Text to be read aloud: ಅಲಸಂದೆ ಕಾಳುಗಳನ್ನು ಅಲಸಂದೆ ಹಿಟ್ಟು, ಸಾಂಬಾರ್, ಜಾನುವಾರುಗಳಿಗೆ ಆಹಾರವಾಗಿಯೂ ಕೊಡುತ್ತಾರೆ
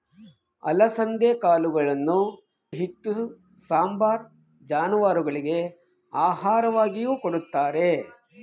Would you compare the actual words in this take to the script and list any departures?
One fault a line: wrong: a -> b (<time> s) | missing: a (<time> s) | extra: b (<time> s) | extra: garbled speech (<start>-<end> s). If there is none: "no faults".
missing: ಅಲಸಂದೆ (2.2 s)